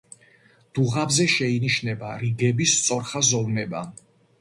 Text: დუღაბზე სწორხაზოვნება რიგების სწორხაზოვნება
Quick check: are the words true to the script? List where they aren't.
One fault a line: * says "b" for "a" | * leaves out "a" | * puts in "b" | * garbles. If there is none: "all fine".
* says "შეინიშნება" for "სწორხაზოვნება"